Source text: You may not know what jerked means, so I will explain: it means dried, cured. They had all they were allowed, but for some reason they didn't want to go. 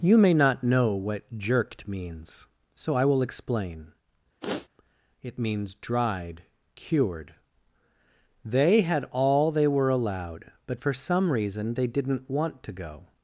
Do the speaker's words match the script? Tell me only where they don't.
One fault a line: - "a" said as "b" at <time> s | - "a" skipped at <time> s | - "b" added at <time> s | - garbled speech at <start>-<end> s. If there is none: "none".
none